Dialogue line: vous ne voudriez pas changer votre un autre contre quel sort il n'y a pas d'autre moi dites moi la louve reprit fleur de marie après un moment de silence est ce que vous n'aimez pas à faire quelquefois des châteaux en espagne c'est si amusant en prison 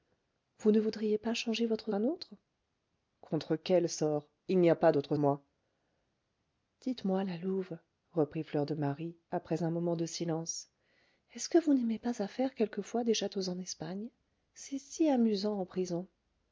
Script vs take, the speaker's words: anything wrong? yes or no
no